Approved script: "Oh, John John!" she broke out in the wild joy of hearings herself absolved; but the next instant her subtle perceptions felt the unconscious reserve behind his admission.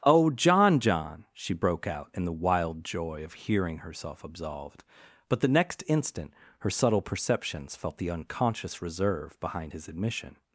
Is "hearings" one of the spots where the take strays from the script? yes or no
yes